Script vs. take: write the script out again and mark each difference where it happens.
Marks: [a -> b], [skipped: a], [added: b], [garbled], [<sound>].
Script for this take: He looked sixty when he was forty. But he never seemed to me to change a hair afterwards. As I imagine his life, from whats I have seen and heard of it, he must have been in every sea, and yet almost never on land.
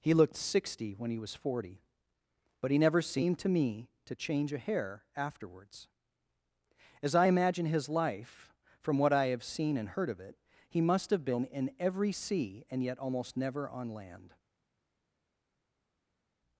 He looked sixty when he was forty. But he never seemed to me to change a hair afterwards. As I imagine his life, from [whats -> what] I have seen and heard of it, he must have been in every sea, and yet almost never on land.